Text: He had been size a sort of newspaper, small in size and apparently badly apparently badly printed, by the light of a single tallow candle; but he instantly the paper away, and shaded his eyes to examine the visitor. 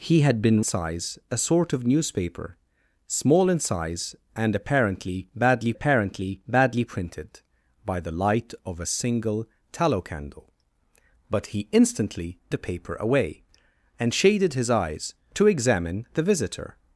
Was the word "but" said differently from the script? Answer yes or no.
no